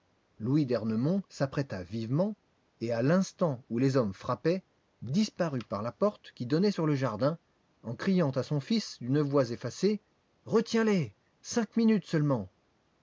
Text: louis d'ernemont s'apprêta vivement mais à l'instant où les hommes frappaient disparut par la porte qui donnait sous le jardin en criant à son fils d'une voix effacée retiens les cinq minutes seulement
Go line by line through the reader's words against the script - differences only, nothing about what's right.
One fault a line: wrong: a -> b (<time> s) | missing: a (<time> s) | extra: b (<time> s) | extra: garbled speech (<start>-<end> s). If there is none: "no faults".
wrong: mais -> et (2.8 s)
wrong: sous -> sur (6.7 s)